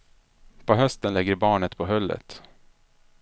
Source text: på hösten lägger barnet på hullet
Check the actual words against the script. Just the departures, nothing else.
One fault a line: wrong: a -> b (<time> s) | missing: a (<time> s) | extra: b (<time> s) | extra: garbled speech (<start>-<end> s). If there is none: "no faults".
no faults